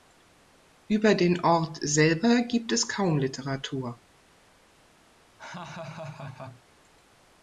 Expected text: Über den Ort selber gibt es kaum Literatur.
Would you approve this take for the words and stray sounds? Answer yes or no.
no